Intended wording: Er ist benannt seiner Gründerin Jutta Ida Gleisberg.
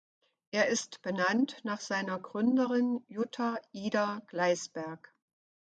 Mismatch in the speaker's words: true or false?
true